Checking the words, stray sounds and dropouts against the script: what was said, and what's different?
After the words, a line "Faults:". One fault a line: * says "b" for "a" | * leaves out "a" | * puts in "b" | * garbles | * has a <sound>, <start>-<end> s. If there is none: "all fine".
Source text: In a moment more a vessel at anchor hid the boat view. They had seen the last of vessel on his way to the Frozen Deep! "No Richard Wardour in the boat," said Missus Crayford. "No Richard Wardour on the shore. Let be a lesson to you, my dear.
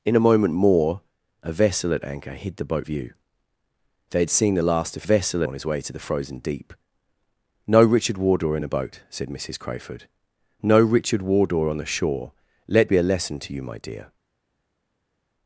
In a moment more a vessel at anchor hid the boat view. They had seen the last of vessel on his way to the Frozen Deep! "No Richard Wardour in the boat," said Missus Crayford. "No Richard Wardour on the shore. Let be a lesson to you, my dear.
Faults:
all fine